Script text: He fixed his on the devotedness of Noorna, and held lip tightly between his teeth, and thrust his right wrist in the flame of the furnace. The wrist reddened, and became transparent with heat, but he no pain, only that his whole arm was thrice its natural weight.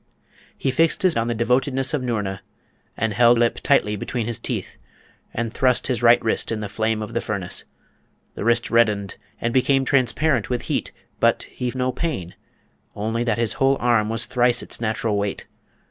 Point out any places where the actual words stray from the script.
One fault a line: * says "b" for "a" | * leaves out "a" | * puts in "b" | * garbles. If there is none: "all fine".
all fine